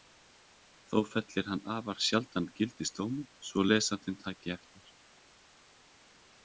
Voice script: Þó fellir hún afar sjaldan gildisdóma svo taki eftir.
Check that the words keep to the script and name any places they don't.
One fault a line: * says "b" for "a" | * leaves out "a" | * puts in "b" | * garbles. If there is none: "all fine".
* says "hann" for "hún"
* puts in "lesandinn"